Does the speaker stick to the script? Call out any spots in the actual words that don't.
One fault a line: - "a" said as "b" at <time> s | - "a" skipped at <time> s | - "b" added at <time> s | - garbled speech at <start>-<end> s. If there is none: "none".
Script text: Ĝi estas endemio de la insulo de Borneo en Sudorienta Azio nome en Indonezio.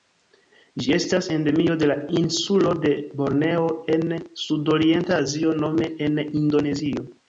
none